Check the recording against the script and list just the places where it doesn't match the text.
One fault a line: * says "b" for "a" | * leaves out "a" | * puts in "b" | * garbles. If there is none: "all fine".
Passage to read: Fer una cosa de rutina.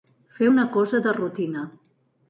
all fine